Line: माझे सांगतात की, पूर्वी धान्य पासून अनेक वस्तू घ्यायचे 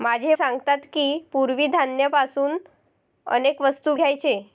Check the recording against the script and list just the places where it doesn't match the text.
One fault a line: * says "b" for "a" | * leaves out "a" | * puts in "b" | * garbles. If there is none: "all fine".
all fine